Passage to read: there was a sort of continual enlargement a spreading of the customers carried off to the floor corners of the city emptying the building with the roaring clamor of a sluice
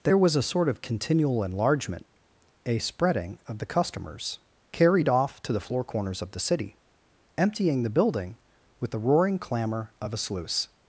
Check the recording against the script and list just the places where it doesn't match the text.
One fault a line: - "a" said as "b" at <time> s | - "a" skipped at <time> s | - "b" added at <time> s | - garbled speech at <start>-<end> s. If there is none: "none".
none